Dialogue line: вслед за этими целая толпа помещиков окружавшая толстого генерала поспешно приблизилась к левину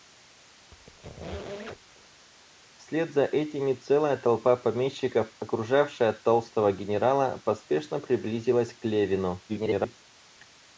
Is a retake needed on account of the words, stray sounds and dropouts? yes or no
yes